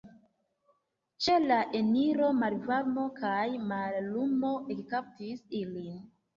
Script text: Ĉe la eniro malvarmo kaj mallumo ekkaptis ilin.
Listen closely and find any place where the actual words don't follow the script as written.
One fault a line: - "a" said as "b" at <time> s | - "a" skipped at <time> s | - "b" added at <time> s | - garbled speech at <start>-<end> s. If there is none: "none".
none